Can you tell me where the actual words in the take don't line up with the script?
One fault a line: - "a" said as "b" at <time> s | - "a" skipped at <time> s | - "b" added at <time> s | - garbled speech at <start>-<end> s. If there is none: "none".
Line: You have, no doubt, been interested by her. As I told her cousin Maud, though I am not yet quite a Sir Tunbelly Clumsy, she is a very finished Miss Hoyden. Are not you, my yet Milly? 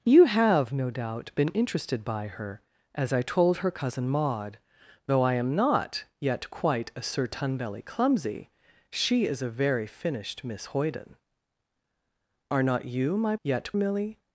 none